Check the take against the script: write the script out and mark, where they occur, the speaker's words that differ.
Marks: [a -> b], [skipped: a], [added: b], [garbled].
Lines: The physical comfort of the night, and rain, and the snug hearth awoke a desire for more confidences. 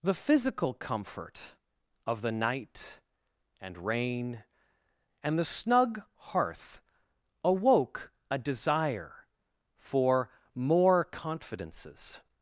The physical comfort of the night, and rain, and the snug hearth awoke a desire for more confidences.